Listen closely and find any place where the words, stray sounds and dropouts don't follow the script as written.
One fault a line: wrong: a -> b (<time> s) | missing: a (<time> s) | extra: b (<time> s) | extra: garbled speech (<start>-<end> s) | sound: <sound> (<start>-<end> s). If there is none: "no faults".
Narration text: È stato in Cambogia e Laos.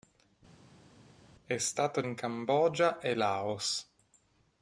no faults